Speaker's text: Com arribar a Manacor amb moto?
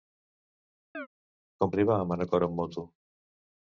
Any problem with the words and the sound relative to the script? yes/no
yes